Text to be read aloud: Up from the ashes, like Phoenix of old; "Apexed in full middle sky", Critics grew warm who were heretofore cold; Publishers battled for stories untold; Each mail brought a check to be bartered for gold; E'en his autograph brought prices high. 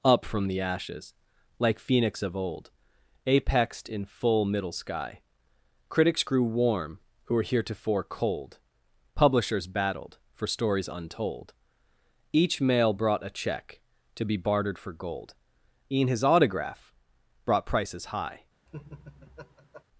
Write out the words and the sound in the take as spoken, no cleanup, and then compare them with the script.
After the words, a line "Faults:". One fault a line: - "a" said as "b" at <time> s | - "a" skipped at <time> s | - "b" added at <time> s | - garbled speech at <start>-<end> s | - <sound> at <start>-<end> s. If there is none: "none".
Up from the ashes, like Phoenix of old; "Apexed in full middle sky", Critics grew warm who were heretofore cold; Publishers battled for stories untold; Each mail brought a check to be bartered for gold; E'en his autograph brought prices high.
Faults:
- laugh at 18.7-19.8 s